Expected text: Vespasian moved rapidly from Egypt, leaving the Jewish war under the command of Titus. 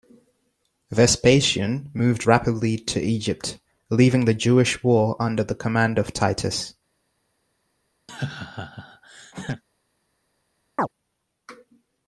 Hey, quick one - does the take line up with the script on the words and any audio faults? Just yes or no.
no